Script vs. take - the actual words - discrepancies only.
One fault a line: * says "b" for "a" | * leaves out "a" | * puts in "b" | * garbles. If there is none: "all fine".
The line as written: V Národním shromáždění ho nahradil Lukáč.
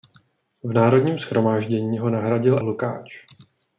all fine